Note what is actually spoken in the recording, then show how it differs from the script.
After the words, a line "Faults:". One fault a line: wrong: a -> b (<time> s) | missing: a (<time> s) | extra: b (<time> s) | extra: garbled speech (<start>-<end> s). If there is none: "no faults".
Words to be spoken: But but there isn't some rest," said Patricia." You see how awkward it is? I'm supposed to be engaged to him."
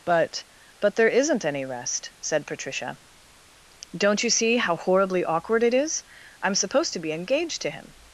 But but there isn't any rest," said Patricia." Don't you see how horribly awkward it is? I'm supposed to be engaged to him."
Faults:
wrong: some -> any (1.4 s)
extra: Don't (4.0 s)
extra: horribly (4.8 s)